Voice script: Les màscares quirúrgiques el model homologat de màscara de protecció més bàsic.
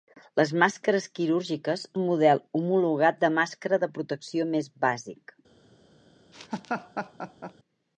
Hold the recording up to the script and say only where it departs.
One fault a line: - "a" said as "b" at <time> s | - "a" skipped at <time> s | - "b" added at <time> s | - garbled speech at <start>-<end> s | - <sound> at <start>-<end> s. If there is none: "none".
- laugh at 6.3-7.5 s